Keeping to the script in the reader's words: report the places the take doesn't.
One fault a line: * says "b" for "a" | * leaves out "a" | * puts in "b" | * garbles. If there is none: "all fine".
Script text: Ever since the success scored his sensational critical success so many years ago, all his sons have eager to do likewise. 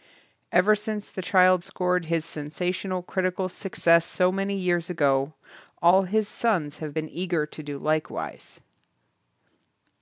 * says "child" for "success"
* puts in "been"